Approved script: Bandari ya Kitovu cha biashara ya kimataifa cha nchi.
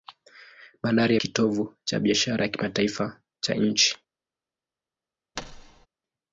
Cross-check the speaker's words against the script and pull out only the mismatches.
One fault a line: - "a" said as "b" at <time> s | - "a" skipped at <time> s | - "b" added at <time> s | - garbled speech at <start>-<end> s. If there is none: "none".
none